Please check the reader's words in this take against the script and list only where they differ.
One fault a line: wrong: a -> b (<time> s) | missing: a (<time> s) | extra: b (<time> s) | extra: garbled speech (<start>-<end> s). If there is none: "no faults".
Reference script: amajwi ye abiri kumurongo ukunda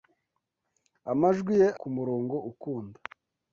missing: abiri (1.7 s)